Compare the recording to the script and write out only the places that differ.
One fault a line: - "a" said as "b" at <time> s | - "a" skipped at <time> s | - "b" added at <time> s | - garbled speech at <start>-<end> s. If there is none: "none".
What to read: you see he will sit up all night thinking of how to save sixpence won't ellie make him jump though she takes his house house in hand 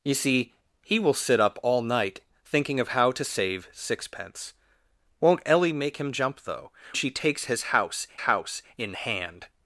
none